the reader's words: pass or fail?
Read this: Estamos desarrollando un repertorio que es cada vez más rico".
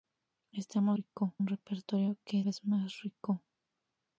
fail